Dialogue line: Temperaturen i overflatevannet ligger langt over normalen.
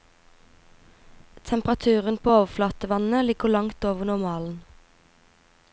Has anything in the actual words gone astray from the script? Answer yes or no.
yes